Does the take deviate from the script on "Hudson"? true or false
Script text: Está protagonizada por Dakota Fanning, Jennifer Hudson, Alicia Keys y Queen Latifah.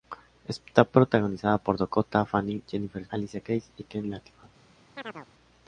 true